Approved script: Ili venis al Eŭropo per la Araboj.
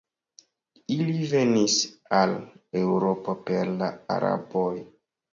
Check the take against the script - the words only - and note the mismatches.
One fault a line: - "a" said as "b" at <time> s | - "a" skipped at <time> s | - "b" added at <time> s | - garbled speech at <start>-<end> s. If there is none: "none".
none